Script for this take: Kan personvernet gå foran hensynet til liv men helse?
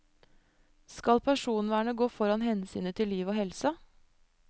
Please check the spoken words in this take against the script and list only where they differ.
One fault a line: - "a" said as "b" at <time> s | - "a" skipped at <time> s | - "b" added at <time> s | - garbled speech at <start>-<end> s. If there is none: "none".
- "Kan" said as "Skal" at 0.9 s
- "men" said as "og" at 3.3 s